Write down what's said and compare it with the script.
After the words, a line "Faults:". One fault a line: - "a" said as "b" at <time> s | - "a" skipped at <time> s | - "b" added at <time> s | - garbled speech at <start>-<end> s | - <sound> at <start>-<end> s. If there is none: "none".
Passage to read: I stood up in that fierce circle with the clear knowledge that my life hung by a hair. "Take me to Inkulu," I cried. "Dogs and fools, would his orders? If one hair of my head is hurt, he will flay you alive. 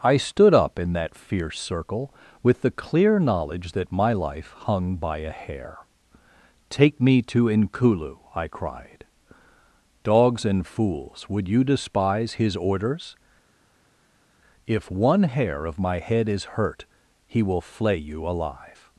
I stood up in that fierce circle with the clear knowledge that my life hung by a hair. "Take me to Inkulu," I cried. "Dogs and fools, would you despise his orders? If one hair of my head is hurt, he will flay you alive.
Faults:
- "you despise" added at 11.5 s